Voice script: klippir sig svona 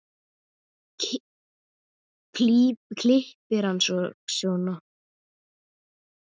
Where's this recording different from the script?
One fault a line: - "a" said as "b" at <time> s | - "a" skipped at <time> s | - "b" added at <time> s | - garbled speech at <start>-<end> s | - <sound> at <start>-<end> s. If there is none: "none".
- "hann" added at 3.7 s